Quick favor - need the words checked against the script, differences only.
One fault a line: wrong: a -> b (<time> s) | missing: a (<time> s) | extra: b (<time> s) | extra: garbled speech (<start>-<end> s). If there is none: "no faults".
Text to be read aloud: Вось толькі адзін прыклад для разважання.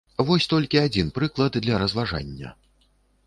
no faults